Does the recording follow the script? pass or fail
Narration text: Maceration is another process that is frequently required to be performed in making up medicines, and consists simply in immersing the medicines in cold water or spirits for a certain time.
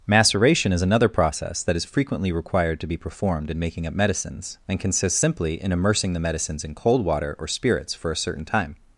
pass